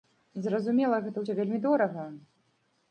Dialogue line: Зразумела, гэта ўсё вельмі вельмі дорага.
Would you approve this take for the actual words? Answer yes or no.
no